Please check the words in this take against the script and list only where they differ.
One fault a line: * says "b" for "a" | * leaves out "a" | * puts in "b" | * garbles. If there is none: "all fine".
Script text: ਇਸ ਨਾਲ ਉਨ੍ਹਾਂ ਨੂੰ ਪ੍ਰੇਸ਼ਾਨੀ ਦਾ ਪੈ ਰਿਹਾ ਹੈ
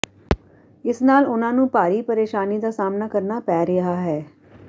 * puts in "ਭਾਰੀ"
* puts in "ਸਾਹਮਣਾ ਕਰਨਾ"